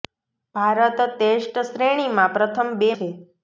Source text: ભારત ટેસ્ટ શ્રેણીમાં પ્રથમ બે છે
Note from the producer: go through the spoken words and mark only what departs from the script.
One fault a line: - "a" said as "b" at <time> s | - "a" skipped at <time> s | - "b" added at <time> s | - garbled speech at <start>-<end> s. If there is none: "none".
none